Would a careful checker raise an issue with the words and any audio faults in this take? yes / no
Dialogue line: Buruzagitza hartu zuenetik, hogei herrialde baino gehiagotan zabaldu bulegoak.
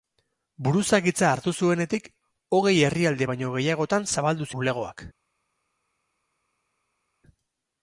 no